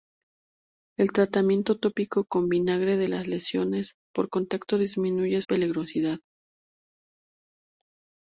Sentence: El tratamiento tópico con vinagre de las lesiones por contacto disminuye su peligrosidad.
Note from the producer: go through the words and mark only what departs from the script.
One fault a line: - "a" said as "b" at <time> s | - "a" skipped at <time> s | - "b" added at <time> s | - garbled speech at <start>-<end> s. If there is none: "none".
- "su" skipped at 5.4 s